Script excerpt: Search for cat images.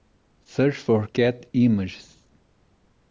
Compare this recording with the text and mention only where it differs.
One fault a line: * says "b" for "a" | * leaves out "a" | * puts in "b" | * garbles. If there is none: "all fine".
all fine